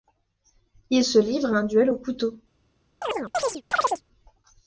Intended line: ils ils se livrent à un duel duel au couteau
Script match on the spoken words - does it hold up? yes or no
no